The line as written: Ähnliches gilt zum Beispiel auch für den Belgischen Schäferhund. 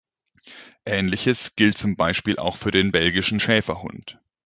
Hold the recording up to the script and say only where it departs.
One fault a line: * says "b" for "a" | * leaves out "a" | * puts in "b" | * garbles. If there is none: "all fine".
all fine